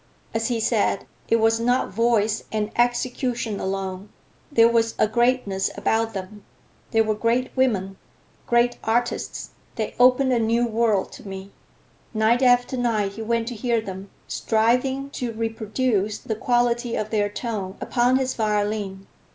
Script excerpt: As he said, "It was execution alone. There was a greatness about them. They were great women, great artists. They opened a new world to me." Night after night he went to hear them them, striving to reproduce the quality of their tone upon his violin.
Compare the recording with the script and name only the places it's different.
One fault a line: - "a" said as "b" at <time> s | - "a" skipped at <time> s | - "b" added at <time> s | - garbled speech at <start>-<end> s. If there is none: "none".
- "not voice and" added at 1.6 s
- "them" skipped at 14.1 s